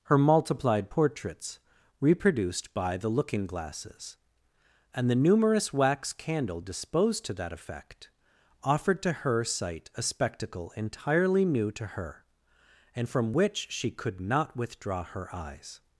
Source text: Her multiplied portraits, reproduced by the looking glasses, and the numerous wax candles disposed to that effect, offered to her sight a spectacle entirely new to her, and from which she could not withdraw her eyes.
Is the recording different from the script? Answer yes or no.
yes